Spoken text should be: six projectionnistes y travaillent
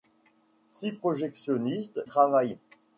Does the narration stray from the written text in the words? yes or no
yes